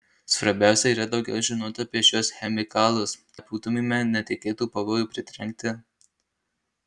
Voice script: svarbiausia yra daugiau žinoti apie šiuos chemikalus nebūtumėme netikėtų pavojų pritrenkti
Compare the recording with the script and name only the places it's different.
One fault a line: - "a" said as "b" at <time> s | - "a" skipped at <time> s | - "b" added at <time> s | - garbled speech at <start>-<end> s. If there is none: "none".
none